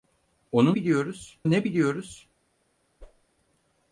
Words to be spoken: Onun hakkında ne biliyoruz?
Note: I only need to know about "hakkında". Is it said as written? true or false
false